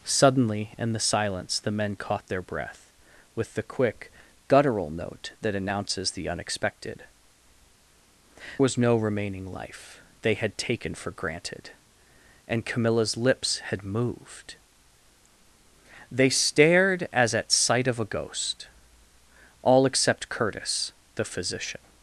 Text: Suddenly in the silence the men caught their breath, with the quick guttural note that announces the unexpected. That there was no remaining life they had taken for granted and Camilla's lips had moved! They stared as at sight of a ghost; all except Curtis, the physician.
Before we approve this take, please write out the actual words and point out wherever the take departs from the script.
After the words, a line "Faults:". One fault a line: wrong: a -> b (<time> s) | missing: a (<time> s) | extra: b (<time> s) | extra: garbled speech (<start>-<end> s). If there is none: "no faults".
Suddenly in the silence the men caught their breath, with the quick guttural note that announces the unexpected. Was no remaining life they had taken for granted and Camilla's lips had moved! They stared as at sight of a ghost; all except Curtis, the physician.
Faults:
missing: That there (7.0 s)